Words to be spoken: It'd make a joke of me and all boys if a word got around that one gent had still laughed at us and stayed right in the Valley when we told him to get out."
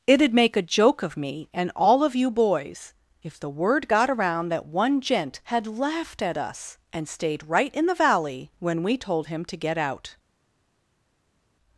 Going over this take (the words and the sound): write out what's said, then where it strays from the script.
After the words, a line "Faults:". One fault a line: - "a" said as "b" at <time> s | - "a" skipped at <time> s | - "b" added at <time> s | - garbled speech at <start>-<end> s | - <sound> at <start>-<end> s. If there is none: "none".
It'd make a joke of me and all of you boys if the word got around that one gent had laughed at us and stayed right in the Valley when we told him to get out."
Faults:
- "of you" added at 2.0 s
- "a" said as "the" at 3.4 s
- "still" skipped at 5.7 s